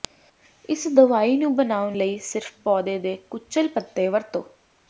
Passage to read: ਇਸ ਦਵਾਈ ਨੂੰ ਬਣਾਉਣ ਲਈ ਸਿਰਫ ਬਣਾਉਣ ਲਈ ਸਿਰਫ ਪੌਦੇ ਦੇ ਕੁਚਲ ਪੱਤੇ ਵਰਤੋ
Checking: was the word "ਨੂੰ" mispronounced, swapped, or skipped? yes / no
no